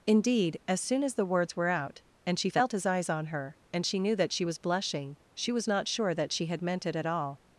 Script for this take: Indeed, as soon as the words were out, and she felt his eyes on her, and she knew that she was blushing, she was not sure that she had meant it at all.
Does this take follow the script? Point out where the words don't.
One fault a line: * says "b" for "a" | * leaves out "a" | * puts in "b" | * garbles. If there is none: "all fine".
all fine